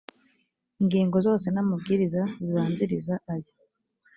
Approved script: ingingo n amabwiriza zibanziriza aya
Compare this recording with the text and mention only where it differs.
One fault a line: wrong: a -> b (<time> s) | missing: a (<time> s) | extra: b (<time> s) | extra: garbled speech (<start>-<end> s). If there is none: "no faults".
extra: zose (1.3 s)